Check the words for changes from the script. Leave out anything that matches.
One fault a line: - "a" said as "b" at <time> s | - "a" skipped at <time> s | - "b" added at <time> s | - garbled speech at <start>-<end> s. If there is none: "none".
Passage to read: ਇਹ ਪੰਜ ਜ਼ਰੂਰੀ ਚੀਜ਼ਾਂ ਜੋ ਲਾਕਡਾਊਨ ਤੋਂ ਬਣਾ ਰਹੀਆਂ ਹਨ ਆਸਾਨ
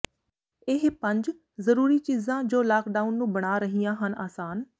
- "ਤੋਂ" said as "ਨੂੰ" at 3.1 s